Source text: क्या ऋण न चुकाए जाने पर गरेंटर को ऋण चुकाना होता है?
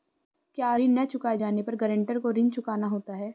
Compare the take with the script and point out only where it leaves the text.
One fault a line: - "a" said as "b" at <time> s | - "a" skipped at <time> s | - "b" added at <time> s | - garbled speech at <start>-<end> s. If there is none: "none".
none